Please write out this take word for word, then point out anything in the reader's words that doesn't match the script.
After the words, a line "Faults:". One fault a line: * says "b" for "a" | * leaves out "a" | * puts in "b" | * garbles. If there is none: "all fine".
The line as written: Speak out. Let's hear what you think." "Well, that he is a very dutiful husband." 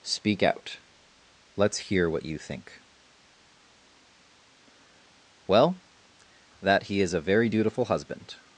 Speak out. Let's hear what you think." "Well, that he is a very dutiful husband."
Faults:
all fine